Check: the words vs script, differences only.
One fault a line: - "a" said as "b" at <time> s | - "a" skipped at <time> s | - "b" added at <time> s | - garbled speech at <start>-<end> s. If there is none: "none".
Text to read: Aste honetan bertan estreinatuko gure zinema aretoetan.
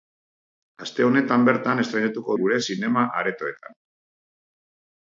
none